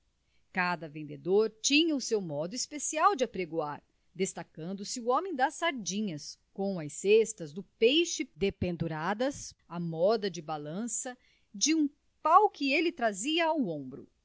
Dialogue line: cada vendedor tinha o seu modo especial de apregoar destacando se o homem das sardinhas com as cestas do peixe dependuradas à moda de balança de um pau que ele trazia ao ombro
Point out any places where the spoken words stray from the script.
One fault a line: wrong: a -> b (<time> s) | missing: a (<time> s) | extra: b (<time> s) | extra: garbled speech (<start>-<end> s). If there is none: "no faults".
no faults